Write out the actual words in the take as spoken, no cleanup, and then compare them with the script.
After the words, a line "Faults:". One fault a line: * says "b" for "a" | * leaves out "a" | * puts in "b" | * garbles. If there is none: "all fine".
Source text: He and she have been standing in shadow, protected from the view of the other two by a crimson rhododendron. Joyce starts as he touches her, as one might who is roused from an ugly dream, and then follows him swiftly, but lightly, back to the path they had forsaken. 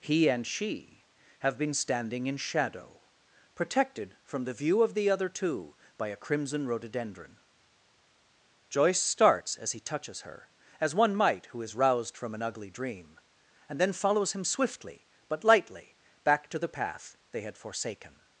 He and she have been standing in shadow, protected from the view of the other two by a crimson rhododendron. Joyce starts as he touches her, as one might who is roused from an ugly dream, and then follows him swiftly, but lightly, back to the path they had forsaken.
Faults:
all fine